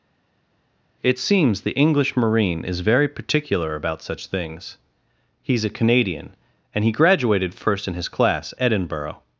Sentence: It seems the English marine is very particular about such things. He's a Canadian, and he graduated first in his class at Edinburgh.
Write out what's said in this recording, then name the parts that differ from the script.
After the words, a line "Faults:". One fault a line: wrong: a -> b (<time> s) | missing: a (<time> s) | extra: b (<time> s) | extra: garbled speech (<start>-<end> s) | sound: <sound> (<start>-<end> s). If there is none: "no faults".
It seems the English marine is very particular about such things. He's a Canadian, and he graduated first in his class Edinburgh.
Faults:
missing: at (8.5 s)